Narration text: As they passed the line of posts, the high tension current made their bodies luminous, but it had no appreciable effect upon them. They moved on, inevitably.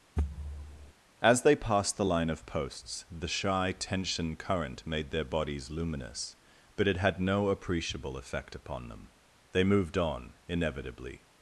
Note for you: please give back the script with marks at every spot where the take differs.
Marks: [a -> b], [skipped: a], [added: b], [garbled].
As they passed the line of posts, the [high -> shy] tension current made their bodies luminous, but it had no appreciable effect upon them. They moved on, inevitably.